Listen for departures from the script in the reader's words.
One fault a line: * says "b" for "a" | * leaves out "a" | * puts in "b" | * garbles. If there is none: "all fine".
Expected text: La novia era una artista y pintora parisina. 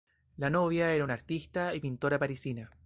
all fine